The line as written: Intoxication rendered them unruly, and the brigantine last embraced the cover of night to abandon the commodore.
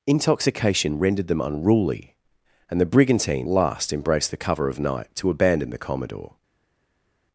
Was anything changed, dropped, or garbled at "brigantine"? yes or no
no